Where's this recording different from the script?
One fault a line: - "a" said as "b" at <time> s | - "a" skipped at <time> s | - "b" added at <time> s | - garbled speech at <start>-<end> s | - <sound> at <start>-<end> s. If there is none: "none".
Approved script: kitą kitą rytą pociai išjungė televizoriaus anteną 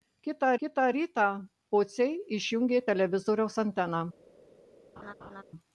- laugh at 5.0-5.4 s